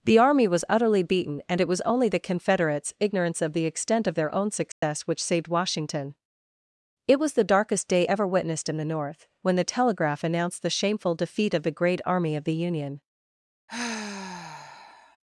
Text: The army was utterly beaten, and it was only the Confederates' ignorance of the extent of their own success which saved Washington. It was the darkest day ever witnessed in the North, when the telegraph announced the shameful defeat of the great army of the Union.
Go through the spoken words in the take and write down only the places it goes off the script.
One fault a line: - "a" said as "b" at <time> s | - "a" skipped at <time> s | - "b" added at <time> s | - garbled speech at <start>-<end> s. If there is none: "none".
none